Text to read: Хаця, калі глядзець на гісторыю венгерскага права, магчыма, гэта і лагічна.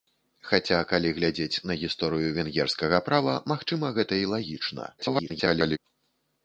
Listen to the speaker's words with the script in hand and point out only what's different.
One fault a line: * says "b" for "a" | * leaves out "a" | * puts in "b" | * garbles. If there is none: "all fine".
* garbles